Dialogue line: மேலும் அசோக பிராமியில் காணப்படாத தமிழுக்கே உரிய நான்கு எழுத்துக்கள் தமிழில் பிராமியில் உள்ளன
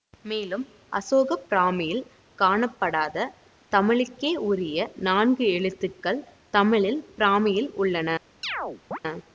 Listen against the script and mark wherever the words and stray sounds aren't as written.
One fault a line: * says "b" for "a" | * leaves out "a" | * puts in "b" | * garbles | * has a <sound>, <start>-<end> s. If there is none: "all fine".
* has a chirp, 8.4-9.0 s